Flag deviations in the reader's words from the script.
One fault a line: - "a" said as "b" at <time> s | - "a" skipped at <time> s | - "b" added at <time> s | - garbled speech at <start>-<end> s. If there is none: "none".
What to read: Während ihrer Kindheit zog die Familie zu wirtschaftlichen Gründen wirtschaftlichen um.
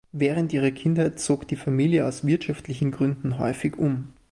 - "zu" said as "aus" at 2.0 s
- "wirtschaftlichen" said as "häufig" at 3.4 s